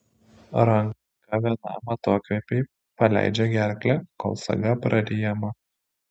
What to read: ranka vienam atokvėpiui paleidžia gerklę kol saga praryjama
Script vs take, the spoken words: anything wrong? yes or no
no